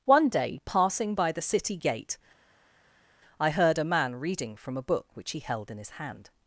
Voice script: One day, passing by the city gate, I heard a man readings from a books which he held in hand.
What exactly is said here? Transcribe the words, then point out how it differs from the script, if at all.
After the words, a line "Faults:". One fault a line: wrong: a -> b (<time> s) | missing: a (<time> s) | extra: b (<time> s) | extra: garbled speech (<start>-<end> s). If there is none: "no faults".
One day, passing by the city gate, I heard a man reading from a book which he held in his hand.
Faults:
wrong: readings -> reading (4.2 s)
wrong: books -> book (4.8 s)
extra: his (5.8 s)